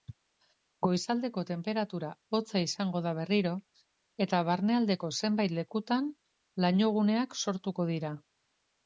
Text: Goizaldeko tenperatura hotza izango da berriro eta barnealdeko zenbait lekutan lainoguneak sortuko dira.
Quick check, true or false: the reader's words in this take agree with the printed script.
true